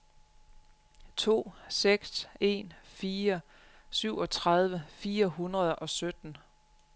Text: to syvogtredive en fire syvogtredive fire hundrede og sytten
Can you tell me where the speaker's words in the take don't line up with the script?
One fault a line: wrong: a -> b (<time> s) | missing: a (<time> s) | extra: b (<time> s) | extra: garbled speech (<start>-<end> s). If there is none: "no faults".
wrong: syvogtredive -> seks (1.7 s)